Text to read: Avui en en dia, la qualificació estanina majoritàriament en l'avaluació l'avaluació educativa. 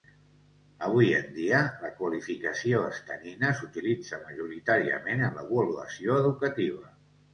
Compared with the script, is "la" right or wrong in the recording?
right